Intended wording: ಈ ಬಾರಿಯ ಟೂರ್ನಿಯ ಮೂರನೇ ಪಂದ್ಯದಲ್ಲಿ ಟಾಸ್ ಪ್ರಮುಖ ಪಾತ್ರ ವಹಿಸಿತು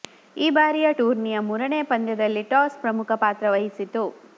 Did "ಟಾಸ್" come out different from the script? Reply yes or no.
no